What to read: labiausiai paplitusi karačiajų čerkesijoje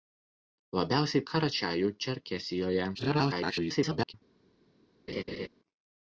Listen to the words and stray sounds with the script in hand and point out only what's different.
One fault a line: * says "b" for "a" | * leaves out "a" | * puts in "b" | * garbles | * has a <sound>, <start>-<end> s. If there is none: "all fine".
* leaves out "paplitusi"
* garbles
* has a laugh, 5.1-5.5 s